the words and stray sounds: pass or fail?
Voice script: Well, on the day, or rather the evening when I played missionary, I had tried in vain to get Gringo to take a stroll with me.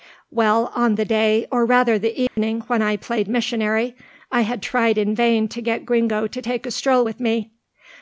fail